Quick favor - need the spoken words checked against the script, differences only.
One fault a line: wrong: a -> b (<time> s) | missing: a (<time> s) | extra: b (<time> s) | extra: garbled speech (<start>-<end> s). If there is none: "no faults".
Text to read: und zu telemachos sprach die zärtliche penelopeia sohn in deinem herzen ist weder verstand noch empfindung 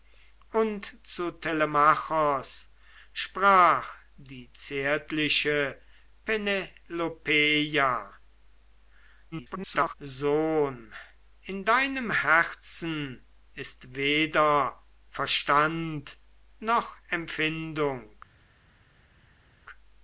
extra: garbled speech (9.3-9.9 s)